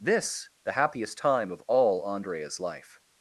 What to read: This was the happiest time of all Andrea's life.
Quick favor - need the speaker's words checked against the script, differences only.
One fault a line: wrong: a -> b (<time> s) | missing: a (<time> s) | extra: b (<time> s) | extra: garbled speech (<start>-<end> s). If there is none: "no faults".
missing: was (0.5 s)